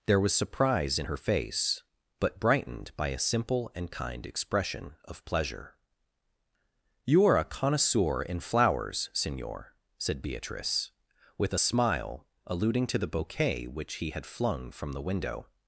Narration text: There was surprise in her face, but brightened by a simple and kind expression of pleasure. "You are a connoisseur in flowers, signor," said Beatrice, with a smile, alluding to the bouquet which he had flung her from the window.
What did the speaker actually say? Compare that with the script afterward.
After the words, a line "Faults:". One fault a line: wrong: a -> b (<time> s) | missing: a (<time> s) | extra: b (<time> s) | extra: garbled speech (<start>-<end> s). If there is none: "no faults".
There was surprise in her face, but brightened by a simple and kind expression of pleasure. "You are a connoisseur in flowers, signor," said Beatrice, with a smile, alluding to the bouquet which he had flung from the window.
Faults:
missing: her (14.7 s)